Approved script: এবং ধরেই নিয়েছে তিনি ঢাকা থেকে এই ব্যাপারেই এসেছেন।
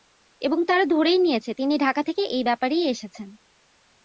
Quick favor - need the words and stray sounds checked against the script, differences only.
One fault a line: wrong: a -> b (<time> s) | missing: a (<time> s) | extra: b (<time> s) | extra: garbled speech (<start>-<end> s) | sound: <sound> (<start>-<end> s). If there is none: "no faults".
extra: তারা (0.7 s)